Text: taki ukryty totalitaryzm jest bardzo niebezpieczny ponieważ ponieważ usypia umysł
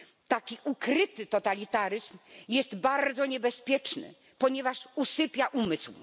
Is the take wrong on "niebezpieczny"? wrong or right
right